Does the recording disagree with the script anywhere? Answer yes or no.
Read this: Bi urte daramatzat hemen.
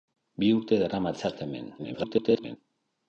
yes